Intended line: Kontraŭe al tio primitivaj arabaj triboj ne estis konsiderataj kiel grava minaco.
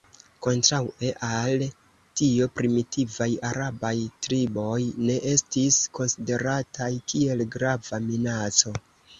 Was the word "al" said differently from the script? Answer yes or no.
no